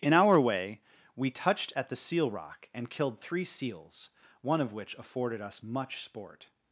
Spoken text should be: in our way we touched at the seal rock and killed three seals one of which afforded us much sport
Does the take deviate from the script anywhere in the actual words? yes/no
no